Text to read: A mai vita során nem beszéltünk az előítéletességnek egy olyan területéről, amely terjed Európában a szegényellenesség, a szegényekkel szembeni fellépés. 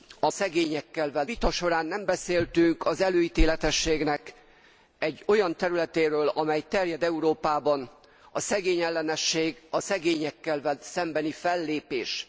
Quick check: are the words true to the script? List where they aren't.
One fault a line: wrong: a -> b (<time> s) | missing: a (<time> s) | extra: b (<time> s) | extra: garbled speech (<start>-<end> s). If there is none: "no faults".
wrong: mai -> szegényekkel (0.3 s)